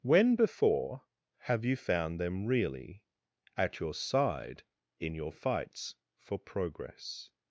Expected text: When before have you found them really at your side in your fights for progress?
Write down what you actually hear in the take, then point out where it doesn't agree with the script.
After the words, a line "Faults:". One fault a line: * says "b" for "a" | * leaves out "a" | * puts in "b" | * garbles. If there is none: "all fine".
When before have you found them really at your side in your fights for progress?
Faults:
all fine